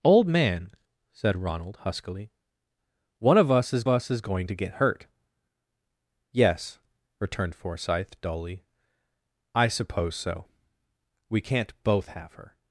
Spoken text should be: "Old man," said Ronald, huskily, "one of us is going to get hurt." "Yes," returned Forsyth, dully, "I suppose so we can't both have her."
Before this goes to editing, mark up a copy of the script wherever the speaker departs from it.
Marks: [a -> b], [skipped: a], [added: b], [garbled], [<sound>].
"Old man," said Ronald, huskily, "one of us is [added: us is] going to get hurt." "Yes," returned Forsyth, dully, "I suppose so we can't both have her."